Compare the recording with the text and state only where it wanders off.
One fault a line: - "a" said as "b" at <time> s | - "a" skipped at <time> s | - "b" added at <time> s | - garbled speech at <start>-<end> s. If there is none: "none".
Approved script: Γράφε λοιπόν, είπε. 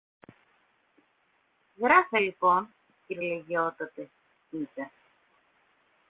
- "κυρ λογιότατε" added at 3.1 s